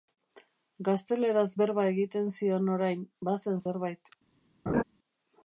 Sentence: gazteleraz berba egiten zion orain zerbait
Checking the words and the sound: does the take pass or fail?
fail